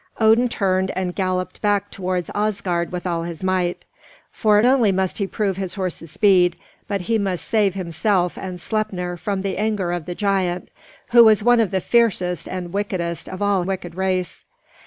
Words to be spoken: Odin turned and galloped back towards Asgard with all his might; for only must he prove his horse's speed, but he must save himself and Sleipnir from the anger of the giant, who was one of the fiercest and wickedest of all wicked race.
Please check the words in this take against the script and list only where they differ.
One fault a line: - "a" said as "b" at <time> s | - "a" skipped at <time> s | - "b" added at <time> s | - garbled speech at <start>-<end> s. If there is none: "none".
none